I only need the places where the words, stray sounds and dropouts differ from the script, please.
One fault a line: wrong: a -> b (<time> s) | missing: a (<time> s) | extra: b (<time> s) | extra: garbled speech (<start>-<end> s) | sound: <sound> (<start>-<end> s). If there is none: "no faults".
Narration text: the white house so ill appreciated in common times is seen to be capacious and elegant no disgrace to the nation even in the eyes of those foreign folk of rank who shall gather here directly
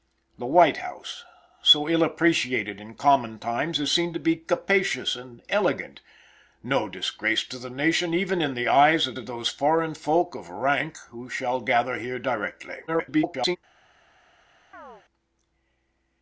extra: of (9.1 s)
extra: garbled speech (12.9-13.6 s)
sound: chirp (14.7-15.0 s)